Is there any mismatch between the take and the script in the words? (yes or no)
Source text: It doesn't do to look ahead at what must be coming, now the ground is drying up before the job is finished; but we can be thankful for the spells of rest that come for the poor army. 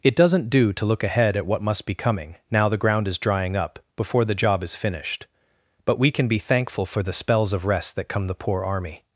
yes